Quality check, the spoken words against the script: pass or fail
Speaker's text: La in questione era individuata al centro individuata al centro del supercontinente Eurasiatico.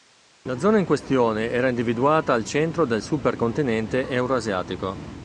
fail